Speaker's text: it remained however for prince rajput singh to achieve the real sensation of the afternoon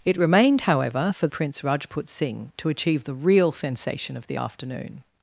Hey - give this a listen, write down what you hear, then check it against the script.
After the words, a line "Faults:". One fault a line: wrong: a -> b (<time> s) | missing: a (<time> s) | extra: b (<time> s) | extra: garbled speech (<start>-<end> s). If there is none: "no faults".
it remained however for prince rajput singh to achieve the real sensation of the afternoon
Faults:
no faults